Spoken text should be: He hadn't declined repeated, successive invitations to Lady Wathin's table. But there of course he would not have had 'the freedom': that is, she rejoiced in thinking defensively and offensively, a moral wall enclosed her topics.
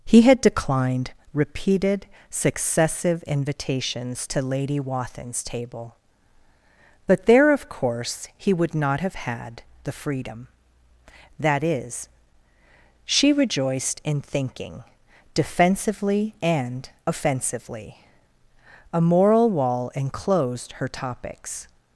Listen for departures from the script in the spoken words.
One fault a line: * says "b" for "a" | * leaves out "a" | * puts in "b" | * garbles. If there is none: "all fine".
* says "had" for "hadn't"